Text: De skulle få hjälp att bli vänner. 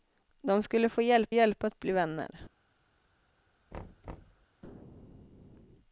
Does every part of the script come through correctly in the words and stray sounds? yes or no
no